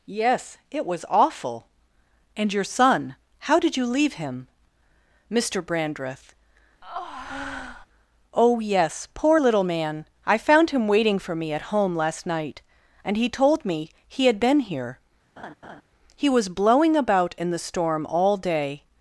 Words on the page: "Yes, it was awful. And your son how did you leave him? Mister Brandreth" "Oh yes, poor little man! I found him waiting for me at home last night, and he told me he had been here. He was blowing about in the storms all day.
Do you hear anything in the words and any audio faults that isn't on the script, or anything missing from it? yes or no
yes